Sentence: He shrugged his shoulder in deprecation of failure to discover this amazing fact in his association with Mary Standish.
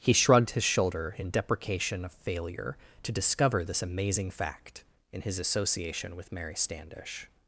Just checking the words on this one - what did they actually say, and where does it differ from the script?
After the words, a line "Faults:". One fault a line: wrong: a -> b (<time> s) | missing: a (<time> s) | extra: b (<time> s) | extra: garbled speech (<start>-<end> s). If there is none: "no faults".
He shrugged his shoulder in deprecation of failure to discover this amazing fact in his association with Mary Standish.
Faults:
no faults